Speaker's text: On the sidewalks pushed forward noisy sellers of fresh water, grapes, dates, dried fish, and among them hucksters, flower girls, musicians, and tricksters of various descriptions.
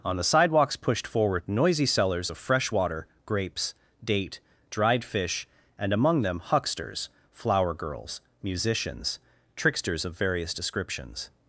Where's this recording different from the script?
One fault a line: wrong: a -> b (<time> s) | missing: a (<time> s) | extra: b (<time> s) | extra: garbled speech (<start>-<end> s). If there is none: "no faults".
wrong: dates -> date (4.0 s)
missing: and (9.2 s)